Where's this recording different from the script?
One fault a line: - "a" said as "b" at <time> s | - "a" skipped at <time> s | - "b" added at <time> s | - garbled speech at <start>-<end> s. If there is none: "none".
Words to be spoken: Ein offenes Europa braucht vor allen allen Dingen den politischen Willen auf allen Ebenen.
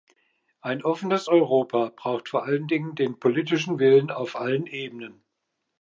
- "allen" skipped at 2.7 s